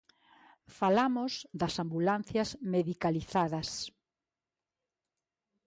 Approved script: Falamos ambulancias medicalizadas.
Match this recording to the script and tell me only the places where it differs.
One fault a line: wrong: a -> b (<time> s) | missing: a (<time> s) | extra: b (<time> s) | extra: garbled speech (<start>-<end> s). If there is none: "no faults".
extra: das (1.6 s)